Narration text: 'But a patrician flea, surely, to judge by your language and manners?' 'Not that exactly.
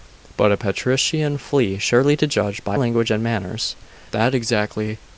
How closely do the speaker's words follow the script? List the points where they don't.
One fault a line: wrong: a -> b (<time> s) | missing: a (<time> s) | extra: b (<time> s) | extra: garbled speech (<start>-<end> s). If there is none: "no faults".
missing: your (2.8 s)
missing: Not (3.7 s)